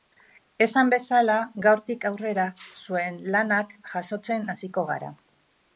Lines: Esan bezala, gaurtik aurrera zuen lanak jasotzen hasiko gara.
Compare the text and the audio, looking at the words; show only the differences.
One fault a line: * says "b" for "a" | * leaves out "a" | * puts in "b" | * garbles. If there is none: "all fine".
all fine